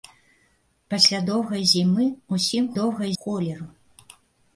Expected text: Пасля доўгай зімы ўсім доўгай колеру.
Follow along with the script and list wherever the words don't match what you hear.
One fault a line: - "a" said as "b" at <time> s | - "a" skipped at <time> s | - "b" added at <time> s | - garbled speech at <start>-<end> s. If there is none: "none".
none